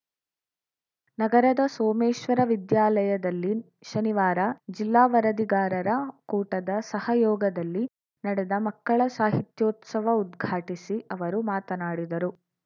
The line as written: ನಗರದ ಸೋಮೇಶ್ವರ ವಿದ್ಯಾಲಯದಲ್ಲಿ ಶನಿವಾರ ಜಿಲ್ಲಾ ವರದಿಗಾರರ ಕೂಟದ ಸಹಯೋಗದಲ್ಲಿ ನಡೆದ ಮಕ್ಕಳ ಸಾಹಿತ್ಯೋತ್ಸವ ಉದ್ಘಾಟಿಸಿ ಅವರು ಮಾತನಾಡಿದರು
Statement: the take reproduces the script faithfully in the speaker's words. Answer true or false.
true